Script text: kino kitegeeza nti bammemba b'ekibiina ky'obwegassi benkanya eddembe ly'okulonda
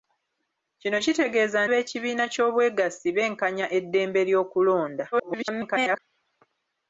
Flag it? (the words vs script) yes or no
yes